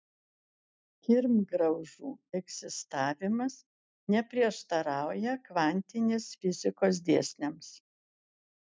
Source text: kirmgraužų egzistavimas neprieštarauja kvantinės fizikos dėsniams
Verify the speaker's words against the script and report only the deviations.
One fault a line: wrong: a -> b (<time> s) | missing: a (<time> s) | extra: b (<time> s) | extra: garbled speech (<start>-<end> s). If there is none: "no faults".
no faults